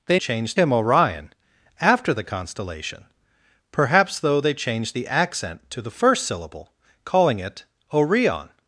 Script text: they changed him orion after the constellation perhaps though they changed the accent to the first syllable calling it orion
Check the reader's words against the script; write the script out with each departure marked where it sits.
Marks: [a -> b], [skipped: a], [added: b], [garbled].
they changed him orion after the constellation perhaps though they changed the accent to the first syllable calling it orion